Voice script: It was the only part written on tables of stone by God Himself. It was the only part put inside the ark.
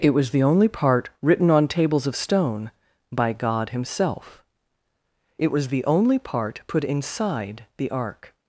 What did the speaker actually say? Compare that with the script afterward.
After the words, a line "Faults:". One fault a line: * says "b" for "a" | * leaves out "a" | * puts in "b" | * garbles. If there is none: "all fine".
It was the only part written on tables of stone by God Himself. It was the only part put inside the ark.
Faults:
all fine